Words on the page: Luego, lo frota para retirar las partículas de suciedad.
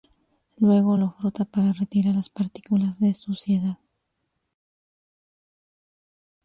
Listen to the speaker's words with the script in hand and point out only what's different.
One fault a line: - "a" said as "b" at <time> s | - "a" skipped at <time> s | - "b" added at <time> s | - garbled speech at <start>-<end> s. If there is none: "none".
none